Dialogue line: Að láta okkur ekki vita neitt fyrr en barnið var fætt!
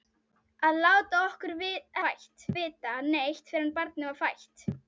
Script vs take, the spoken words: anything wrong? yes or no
yes